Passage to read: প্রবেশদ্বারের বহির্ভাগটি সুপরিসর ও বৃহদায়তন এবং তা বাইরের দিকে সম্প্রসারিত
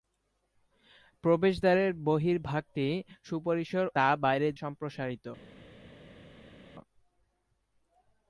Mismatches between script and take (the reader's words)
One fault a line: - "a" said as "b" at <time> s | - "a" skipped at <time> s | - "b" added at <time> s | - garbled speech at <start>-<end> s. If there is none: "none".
- "ও বৃহদায়তন এবং" skipped at 3.9 s
- "দিকে" skipped at 4.5 s